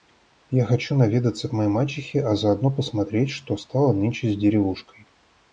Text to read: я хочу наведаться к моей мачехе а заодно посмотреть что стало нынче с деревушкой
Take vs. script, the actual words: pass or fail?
pass